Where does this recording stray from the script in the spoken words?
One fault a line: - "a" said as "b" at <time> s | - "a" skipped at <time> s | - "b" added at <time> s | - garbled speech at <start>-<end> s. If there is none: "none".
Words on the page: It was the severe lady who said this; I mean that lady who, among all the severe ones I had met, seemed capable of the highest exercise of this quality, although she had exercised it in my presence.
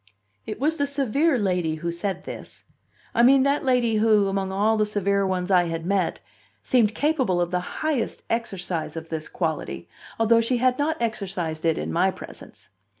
- "not" added at 10.8 s